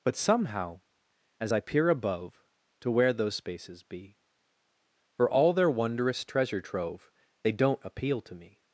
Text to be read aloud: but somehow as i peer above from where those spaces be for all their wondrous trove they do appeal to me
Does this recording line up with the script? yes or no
no